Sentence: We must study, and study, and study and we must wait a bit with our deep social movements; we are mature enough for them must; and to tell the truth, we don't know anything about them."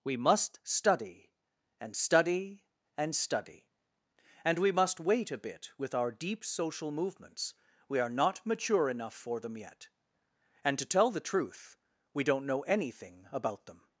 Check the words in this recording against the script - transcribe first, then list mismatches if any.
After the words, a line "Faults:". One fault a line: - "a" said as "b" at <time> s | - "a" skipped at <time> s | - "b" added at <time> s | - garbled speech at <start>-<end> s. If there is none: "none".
We must study, and study, and study and we must wait a bit with our deep social movements; we are not mature enough for them yet; and to tell the truth, we don't know anything about them."
Faults:
- "not" added at 8.1 s
- "must" said as "yet" at 9.6 s